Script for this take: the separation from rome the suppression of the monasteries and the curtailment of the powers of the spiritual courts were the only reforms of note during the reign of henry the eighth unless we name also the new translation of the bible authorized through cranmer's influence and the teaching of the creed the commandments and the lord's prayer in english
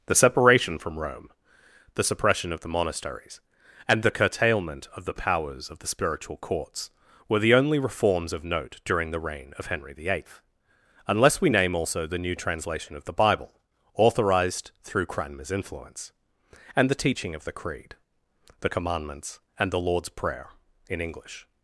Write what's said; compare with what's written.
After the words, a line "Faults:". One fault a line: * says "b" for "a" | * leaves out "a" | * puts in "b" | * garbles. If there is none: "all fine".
the separation from rome the suppression of the monasteries and the curtailment of the powers of the spiritual courts were the only reforms of note during the reign of henry the eighth unless we name also the new translation of the bible authorized through cranmer's influence and the teaching of the creed the commandments and the lord's prayer in english
Faults:
all fine